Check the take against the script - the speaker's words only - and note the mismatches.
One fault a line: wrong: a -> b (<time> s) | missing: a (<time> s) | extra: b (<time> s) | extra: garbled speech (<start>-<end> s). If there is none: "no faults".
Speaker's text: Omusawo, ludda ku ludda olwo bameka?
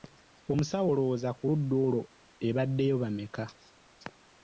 wrong: ludda -> olowooza (0.9 s)
extra: ebaddeyo (2.5 s)